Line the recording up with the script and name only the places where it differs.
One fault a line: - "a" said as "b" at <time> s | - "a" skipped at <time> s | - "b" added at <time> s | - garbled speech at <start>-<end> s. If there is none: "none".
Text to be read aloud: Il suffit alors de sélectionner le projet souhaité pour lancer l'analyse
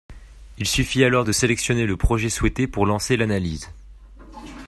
none